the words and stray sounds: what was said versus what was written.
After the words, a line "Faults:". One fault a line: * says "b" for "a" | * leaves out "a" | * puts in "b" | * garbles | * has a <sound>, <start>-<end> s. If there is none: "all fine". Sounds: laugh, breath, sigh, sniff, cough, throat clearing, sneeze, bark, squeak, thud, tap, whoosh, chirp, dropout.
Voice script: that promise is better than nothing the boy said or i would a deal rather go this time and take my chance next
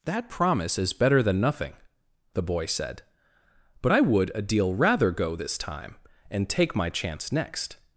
that promise is better than nothing the boy said but i would a deal rather go this time and take my chance next
Faults:
* says "but" for "or"